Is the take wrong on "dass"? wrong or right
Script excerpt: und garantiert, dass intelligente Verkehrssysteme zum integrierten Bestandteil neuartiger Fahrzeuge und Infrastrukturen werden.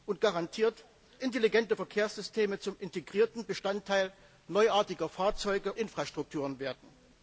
wrong